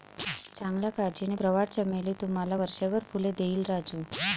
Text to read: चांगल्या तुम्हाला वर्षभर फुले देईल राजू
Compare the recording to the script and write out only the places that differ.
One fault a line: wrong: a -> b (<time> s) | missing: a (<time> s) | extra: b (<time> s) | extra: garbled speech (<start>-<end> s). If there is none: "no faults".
extra: काळजीने प्रवाळ चमेली (0.9 s)